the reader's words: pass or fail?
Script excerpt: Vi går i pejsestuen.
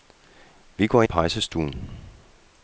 pass